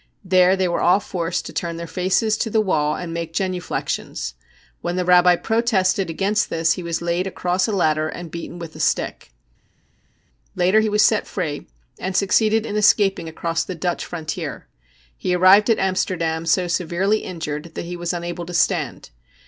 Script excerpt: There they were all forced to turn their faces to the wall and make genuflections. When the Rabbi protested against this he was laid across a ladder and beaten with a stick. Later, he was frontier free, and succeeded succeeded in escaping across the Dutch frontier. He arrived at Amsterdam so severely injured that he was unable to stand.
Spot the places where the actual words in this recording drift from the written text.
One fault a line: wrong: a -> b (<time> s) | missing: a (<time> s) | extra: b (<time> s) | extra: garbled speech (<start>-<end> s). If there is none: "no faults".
wrong: frontier -> set (11.0 s)
missing: succeeded (12.6 s)